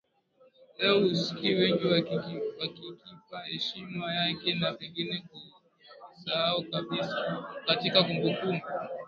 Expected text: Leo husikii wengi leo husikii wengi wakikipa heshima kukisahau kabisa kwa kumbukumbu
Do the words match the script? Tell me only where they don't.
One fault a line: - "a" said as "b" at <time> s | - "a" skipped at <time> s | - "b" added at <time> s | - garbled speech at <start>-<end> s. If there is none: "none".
- "leo husikii wengi wakikipa heshima" said as "wakikipa heshima yake na pengine" at 1.9 s
- "kwa" said as "katika" at 7.7 s